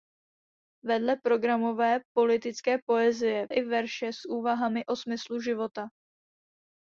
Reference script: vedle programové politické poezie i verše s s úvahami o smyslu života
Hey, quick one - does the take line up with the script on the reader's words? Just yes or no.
yes